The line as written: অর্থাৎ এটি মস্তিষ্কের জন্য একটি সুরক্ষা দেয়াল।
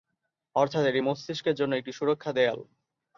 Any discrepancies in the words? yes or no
no